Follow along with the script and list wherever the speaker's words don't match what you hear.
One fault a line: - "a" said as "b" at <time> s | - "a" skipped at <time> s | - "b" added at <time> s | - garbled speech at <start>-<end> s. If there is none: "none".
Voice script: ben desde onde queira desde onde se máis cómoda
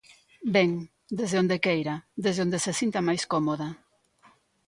- "sinta" added at 2.8 s